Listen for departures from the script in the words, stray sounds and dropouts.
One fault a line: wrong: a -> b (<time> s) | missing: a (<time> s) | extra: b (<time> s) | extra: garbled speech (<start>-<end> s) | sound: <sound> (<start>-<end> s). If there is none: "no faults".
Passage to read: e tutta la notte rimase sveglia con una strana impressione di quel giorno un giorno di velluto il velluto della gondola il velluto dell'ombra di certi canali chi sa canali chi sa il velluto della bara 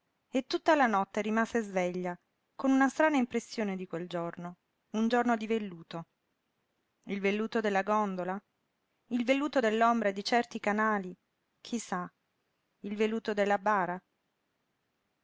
missing: canali chi sa (12.1 s)